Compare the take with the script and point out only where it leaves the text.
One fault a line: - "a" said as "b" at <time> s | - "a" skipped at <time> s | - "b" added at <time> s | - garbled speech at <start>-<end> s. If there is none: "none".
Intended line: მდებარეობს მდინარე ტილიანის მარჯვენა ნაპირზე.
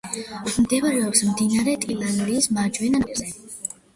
none